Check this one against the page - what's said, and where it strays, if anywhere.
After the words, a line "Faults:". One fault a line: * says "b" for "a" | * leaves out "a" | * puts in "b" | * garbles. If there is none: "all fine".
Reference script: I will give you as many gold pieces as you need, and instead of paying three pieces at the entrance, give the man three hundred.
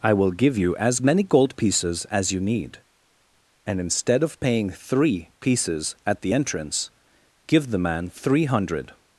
I will give you as many gold pieces as you need, and instead of paying three pieces at the entrance, give the man three hundred.
Faults:
all fine